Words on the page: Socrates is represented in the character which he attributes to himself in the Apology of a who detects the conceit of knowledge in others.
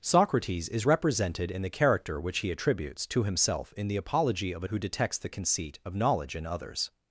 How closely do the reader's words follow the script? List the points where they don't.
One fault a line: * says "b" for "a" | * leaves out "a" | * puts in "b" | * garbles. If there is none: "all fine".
all fine